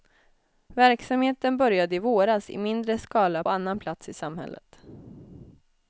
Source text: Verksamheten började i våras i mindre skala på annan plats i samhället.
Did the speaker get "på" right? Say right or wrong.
wrong